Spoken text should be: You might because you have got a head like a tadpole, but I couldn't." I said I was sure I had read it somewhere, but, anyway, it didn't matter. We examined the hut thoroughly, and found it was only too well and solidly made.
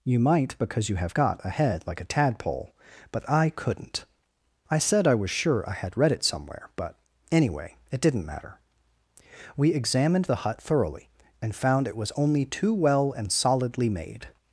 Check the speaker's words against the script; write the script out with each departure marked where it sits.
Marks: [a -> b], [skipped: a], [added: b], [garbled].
You might because you have got a head like a tadpole, but I couldn't." I said I was sure I had read it somewhere, but, anyway, it didn't matter. We examined the hut thoroughly, and found it was only too well and solidly made.